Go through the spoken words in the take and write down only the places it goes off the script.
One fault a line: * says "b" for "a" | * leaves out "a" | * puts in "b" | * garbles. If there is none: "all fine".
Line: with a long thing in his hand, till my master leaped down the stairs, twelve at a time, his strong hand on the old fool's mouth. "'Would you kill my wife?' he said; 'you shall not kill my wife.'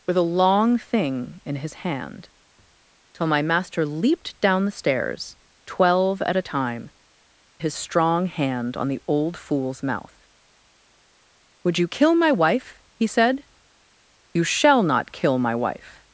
all fine